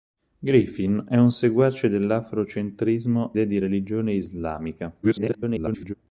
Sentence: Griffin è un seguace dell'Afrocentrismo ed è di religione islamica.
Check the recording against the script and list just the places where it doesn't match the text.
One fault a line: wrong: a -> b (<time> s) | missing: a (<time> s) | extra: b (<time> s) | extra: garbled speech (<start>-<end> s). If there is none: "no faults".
missing: ed (3.4 s)
extra: garbled speech (5.0-5.9 s)